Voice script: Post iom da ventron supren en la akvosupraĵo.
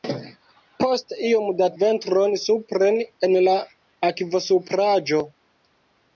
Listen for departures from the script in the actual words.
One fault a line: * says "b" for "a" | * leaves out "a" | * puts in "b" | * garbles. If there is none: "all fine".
all fine